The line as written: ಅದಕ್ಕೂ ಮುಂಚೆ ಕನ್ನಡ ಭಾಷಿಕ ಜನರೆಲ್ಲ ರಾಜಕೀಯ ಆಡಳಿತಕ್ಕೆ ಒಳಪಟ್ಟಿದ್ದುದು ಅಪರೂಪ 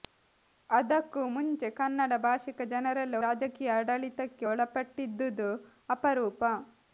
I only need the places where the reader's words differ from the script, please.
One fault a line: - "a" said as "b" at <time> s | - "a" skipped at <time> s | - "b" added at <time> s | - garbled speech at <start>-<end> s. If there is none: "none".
none